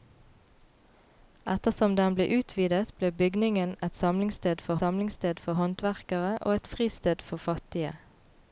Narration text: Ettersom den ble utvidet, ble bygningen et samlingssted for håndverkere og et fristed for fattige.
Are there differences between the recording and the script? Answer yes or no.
yes